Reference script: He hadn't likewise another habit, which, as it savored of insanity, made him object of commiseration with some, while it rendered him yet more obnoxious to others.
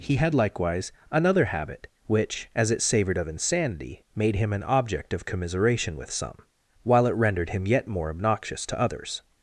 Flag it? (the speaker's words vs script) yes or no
yes